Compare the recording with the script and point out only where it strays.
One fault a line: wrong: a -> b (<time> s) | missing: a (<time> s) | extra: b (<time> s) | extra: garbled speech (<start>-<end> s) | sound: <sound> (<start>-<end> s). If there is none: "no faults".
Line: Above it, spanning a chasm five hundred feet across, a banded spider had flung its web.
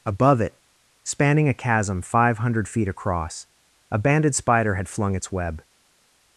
no faults